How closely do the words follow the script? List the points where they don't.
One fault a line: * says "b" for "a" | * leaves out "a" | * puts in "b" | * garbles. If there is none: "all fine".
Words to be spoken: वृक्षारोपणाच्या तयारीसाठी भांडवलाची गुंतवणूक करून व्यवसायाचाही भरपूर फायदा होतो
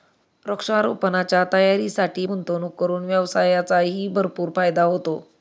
* leaves out "भांडवलाची"